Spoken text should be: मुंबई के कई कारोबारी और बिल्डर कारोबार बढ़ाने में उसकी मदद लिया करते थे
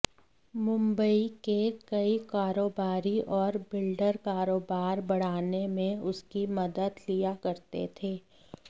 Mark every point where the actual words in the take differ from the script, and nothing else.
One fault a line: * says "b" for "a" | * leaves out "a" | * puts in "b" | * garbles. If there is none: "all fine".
all fine